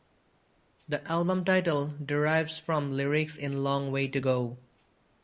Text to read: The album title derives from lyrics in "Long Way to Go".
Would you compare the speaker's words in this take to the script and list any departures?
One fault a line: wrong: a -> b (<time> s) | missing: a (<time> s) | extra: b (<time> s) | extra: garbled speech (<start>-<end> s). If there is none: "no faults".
no faults